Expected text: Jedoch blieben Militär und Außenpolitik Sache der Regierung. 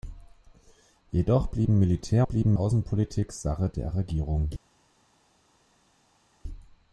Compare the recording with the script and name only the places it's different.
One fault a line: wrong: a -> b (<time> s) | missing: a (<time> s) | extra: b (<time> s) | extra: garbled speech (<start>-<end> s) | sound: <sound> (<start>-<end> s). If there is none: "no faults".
wrong: und -> blieben (2.2 s)